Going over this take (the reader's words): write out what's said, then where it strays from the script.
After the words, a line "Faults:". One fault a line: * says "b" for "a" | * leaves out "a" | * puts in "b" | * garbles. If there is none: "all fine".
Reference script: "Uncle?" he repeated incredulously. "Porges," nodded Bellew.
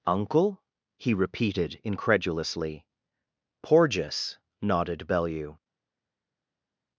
"Uncle?" he repeated incredulously. "Porges," nodded Bellew.
Faults:
all fine